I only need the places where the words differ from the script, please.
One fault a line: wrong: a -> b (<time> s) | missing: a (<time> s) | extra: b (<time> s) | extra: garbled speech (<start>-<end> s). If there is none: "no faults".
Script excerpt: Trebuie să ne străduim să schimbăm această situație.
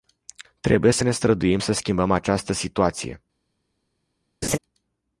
no faults